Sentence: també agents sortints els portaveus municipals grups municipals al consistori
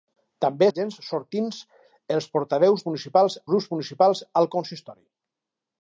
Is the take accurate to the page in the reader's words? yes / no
yes